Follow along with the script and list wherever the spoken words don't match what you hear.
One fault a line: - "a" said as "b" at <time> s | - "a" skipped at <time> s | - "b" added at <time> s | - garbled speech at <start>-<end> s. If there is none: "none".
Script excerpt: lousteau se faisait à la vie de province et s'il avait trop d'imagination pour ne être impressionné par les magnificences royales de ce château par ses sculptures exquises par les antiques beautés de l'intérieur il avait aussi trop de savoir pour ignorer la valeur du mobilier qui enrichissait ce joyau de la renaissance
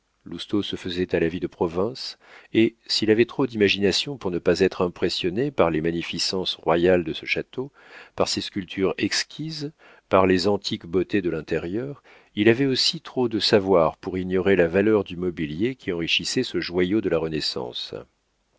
- "pas" added at 4.4 s